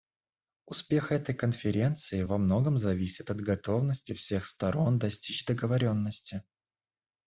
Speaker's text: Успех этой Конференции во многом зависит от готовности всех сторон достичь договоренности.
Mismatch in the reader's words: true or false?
false